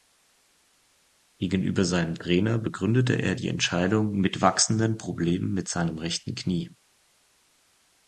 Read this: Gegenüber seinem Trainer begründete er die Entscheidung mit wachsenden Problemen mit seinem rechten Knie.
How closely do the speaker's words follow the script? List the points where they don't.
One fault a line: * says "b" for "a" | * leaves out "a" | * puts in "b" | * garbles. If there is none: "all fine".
all fine